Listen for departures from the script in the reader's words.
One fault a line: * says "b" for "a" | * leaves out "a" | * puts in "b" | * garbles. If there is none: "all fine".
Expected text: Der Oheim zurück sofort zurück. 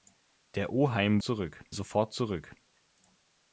all fine